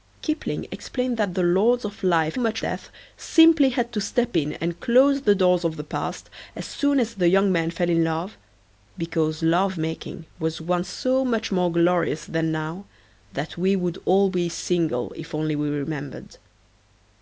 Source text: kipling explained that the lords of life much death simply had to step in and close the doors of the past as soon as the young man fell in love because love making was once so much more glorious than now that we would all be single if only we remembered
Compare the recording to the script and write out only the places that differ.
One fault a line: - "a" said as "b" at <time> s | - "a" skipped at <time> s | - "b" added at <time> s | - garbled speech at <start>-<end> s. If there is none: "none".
none